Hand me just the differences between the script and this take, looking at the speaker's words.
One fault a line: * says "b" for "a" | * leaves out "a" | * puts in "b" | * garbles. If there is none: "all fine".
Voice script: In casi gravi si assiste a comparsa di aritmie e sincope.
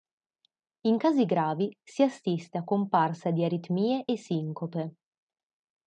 all fine